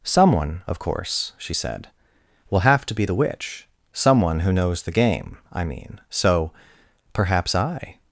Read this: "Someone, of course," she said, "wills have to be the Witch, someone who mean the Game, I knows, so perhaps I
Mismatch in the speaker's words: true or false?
true